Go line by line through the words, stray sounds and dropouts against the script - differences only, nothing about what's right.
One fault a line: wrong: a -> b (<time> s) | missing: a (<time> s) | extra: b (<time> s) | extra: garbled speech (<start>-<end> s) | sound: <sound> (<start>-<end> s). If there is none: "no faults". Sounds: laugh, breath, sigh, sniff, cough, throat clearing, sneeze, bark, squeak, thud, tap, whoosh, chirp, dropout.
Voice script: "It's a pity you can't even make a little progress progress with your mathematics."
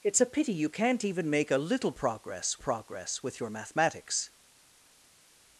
no faults